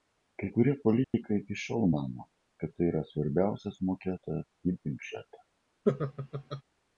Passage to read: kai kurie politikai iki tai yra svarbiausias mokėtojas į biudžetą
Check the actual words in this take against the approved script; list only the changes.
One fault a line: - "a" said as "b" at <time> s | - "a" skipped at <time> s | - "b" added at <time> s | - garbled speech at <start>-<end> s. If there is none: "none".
- "šiol mano kad" added at 1.6 s